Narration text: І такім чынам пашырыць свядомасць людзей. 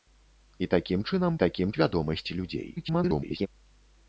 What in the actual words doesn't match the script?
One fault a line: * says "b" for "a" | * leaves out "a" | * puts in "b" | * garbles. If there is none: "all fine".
* says "такім" for "пашырыць"
* garbles